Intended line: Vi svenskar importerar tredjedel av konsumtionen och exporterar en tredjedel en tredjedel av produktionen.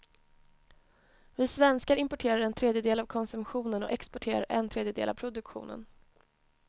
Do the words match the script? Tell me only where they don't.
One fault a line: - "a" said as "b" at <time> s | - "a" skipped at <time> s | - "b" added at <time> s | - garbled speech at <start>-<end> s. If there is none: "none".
- "en" added at 2.4 s
- "en tredjedel" skipped at 5.1 s